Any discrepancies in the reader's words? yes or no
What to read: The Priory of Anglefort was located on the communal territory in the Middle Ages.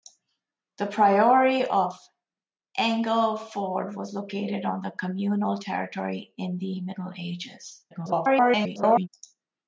yes